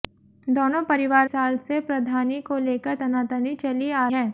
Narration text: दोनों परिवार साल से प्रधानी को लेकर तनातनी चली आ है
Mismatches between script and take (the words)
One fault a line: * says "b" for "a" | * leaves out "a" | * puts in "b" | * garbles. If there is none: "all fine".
all fine